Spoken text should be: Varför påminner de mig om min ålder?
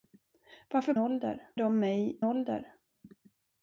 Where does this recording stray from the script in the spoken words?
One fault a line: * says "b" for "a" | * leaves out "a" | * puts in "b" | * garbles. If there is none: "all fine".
* says "ålder" for "påminner"
* leaves out "om min"